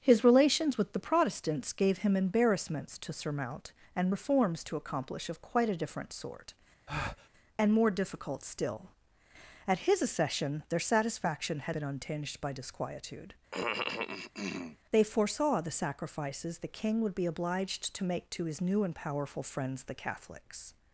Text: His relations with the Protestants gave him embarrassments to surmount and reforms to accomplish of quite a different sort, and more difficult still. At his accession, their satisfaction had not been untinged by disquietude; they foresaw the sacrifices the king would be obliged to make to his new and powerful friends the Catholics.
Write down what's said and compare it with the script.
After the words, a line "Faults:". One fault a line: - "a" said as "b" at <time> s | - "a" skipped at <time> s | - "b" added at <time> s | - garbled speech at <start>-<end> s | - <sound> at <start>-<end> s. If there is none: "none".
His relations with the Protestants gave him embarrassments to surmount and reforms to accomplish of quite a different sort, and more difficult still. At his accession, their satisfaction had been untinged by disquietude; they foresaw the sacrifices the king would be obliged to make to his new and powerful friends the Catholics.
Faults:
- breath at 6.9-7.3 s
- "not" skipped at 11.8 s
- cough at 13.5-14.8 s